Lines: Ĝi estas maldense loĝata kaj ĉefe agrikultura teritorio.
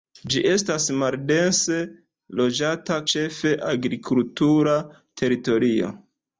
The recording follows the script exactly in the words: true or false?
false